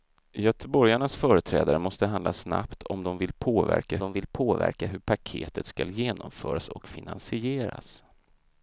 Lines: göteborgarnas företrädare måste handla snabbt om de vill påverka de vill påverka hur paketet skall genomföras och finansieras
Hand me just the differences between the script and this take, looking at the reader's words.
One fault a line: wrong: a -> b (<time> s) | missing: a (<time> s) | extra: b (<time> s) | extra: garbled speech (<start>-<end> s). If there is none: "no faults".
no faults